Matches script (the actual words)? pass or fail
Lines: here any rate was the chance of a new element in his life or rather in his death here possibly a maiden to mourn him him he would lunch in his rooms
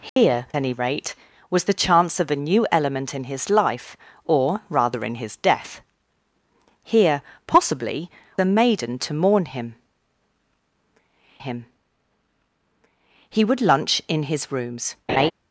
pass